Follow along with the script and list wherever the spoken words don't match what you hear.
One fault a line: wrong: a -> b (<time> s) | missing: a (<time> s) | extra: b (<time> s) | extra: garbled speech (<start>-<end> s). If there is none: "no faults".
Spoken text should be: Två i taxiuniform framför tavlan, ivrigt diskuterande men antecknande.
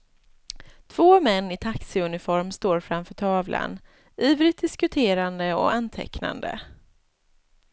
extra: män (1.2 s)
extra: står (2.5 s)
wrong: men -> och (5.5 s)